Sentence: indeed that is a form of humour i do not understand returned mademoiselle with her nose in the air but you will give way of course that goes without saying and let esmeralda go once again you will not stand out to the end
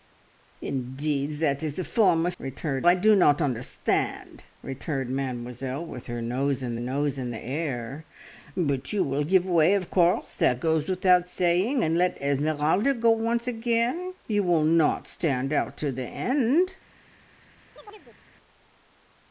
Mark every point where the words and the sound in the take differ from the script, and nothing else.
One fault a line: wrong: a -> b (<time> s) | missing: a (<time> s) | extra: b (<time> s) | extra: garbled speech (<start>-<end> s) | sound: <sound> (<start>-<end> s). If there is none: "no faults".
wrong: humour -> returned (2.4 s)
extra: nose in (6.8 s)
sound: chirp (17.8-18.2 s)